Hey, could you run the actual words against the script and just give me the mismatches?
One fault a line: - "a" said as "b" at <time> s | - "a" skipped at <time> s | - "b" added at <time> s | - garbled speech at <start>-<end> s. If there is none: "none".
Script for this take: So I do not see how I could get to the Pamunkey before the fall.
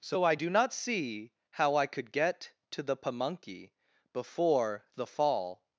none